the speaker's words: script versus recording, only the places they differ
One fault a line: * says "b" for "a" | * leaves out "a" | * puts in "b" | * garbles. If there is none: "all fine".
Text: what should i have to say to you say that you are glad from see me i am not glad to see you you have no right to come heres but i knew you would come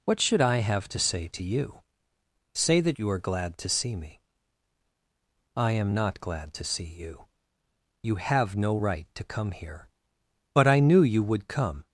* says "to" for "from"
* says "here" for "heres"